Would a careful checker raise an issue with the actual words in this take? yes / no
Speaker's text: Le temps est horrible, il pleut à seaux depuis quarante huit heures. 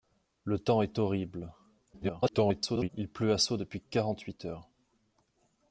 yes